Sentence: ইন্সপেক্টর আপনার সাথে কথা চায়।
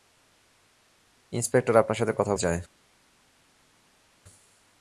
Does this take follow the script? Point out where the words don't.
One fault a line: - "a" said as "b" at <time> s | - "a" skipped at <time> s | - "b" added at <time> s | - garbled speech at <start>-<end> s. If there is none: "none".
none